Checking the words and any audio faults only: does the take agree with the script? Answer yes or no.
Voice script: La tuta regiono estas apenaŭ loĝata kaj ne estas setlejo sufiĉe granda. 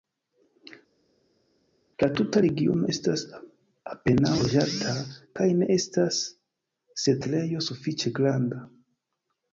yes